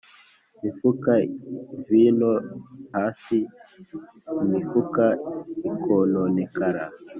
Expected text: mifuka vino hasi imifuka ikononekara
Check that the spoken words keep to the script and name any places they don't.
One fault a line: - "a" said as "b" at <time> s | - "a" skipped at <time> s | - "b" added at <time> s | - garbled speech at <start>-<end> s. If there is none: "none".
none